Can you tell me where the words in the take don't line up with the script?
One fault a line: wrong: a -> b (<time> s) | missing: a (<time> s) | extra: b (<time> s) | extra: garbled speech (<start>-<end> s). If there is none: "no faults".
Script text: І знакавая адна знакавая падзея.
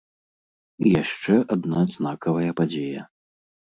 wrong: знакавая -> яшчэ (1.0 s)